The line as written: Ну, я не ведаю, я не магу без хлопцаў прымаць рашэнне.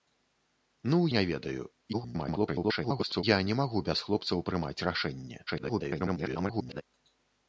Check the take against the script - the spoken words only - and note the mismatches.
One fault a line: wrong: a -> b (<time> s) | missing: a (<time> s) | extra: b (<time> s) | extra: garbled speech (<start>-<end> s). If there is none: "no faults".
missing: я (1.0 s)
extra: garbled speech (1.9-3.2 s)
extra: garbled speech (5.5-6.8 s)